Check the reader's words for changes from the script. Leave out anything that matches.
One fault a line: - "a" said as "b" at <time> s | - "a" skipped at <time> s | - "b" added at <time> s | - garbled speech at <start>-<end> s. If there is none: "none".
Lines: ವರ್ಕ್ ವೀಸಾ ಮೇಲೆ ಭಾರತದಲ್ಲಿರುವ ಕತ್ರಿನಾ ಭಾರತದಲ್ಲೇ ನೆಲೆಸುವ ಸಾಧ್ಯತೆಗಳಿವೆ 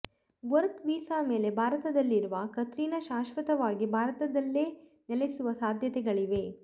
- "ಶಾಶ್ವತವಾಗಿ" added at 3.0 s